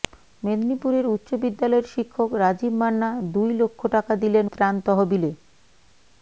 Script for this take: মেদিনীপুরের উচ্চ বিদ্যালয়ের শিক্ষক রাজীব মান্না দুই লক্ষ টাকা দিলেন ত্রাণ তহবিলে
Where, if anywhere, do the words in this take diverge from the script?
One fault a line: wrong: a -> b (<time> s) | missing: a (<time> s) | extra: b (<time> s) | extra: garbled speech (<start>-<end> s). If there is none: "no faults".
no faults